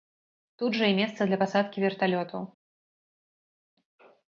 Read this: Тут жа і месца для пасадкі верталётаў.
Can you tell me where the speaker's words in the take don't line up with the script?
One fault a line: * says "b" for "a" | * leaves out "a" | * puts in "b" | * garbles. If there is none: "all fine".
all fine